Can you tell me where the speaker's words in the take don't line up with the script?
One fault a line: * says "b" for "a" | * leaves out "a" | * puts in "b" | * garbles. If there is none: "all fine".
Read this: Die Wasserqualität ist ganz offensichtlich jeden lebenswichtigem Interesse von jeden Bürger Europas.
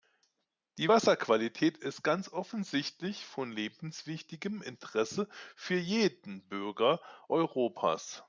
* says "von" for "jeden"
* says "für" for "von"